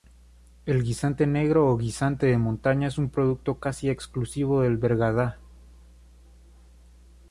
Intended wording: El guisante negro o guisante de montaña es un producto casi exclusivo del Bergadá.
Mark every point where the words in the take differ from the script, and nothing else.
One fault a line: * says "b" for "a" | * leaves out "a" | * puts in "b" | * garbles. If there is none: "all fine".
all fine